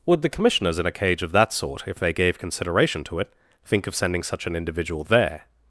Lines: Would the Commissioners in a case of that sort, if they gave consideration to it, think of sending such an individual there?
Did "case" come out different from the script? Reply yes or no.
yes